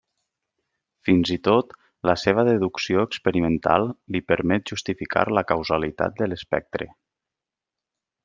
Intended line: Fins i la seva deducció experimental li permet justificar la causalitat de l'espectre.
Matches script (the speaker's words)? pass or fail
fail